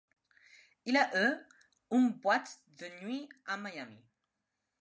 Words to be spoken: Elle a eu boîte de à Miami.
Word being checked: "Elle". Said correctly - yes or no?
no